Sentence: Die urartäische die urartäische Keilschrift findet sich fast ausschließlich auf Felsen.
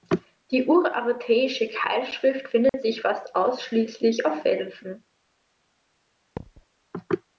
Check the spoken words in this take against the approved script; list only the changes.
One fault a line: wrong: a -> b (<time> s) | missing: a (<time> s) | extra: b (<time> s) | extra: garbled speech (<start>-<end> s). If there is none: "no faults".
missing: die urartäische (1.7 s)